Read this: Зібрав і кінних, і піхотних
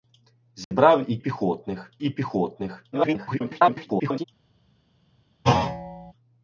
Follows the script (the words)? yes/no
no